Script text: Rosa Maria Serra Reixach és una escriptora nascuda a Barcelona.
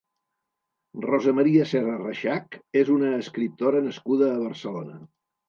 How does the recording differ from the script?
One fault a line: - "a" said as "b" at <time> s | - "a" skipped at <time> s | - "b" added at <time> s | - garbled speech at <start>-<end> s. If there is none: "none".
none